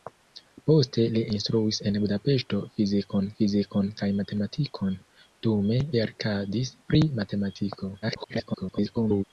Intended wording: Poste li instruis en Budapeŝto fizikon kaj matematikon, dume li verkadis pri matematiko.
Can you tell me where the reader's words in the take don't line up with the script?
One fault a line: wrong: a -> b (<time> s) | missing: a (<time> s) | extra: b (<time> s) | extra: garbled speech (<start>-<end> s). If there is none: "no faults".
extra: fizikon (3.4 s)
missing: li (5.8 s)
extra: garbled speech (8.0-9.2 s)